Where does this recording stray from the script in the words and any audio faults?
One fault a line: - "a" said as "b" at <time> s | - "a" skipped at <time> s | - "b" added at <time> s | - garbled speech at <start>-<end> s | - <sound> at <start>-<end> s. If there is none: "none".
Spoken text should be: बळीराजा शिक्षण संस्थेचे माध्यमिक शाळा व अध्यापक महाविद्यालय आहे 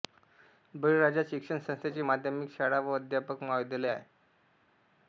none